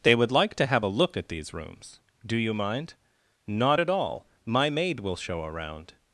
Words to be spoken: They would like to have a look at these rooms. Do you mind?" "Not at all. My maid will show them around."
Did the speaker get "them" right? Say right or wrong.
wrong